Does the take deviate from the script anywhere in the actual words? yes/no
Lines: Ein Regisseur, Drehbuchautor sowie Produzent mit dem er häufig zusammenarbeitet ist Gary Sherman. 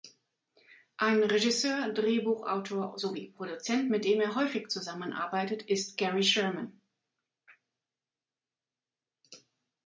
no